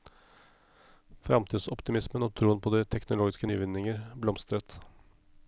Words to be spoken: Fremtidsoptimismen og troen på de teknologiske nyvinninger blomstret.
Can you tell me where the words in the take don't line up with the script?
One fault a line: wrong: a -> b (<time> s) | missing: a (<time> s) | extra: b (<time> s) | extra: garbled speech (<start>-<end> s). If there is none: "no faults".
no faults